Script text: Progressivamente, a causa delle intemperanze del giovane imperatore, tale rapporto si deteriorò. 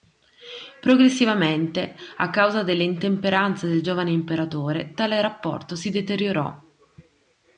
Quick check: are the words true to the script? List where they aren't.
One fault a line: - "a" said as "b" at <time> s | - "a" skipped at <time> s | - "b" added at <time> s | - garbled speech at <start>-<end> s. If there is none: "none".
none